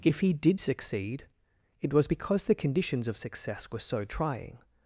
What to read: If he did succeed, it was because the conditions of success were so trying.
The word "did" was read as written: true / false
true